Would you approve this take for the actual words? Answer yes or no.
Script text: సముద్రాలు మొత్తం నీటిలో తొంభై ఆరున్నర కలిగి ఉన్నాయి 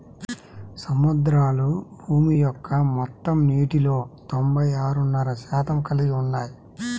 no